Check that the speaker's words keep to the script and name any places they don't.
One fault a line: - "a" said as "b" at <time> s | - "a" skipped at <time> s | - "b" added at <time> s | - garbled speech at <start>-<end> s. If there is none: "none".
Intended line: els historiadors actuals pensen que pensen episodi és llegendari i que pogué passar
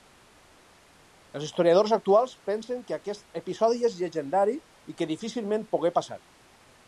- "pensen" said as "aquest" at 3.0 s
- "difícilment" added at 5.1 s